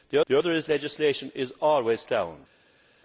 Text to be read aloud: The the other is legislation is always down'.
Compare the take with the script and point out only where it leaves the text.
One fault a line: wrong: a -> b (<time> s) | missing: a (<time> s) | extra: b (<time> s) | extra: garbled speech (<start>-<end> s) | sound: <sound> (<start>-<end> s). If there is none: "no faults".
no faults